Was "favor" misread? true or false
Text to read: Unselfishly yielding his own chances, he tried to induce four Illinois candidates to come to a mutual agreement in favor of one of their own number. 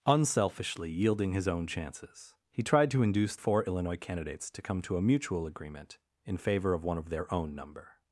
false